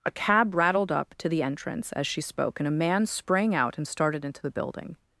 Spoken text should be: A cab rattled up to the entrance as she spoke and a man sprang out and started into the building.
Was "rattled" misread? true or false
false